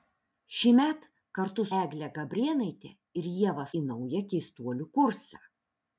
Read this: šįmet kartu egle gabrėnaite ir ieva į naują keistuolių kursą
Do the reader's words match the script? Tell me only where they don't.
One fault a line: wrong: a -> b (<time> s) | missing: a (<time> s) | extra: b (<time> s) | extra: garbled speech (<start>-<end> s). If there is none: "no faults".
no faults